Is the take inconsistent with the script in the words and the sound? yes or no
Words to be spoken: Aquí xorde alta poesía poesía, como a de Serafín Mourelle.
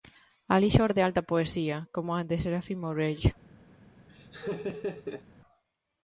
yes